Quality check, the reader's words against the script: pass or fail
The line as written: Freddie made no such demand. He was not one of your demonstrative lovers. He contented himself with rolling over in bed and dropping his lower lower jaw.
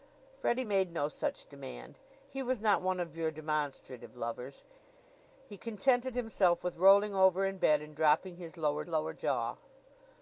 pass